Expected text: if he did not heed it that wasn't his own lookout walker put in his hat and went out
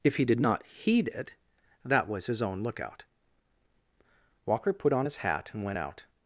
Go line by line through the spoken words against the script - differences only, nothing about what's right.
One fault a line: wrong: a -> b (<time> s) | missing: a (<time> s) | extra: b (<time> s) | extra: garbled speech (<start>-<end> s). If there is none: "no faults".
wrong: wasn't -> was (2.1 s)
wrong: in -> on (4.9 s)